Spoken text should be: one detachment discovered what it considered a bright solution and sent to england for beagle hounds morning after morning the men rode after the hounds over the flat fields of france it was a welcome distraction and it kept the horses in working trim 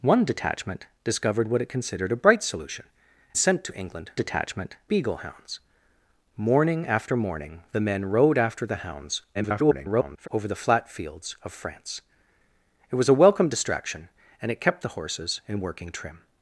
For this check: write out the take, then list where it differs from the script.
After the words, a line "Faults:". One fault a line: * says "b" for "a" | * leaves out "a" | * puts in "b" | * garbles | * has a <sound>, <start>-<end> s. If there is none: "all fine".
one detachment discovered what it considered a bright solution sent to england detachment beagle hounds morning after morning the men rode after the hounds [garbled] over the flat fields of france it was a welcome distraction and it kept the horses in working trim
Faults:
* leaves out "and"
* says "detachment" for "for"
* garbles